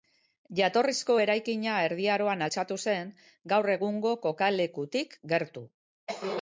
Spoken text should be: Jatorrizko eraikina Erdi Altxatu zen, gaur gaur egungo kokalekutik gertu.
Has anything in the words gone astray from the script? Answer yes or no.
yes